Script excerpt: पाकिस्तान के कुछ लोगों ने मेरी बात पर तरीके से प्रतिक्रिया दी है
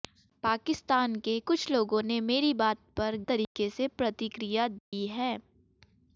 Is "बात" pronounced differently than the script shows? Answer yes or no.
no